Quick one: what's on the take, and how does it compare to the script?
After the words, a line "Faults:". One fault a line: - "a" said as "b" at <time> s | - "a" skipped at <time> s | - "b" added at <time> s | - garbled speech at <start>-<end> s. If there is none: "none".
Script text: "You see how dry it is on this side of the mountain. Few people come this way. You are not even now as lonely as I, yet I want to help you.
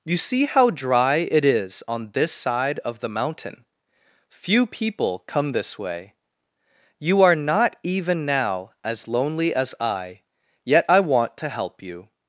"You see how dry it is on this side of the mountain. Few people come this way. You are not even now as lonely as I, yet I want to help you.
Faults:
none